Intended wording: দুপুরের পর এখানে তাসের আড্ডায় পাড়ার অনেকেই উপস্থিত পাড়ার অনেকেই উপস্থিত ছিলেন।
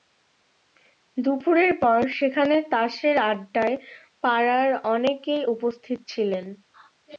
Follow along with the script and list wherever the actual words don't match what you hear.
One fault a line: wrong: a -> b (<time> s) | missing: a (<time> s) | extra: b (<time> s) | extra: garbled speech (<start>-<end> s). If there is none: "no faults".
wrong: এখানে -> সেখানে (2.2 s)
missing: পাড়ার অনেকেই উপস্থিত (6.0 s)